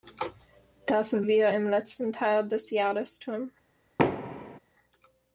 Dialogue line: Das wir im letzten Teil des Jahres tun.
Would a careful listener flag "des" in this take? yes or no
no